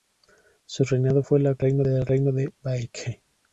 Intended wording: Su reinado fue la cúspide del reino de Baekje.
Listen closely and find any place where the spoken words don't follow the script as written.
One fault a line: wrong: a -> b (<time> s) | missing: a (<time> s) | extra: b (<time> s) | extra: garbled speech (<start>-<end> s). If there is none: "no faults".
wrong: cúspide -> reino (1.6 s)